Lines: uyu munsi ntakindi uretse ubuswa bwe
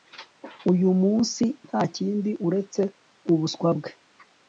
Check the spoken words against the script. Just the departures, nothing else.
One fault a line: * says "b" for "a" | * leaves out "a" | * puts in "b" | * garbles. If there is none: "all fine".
all fine